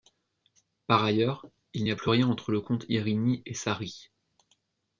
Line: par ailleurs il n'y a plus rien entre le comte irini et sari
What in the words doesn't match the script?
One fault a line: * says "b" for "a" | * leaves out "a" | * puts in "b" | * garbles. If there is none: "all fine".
all fine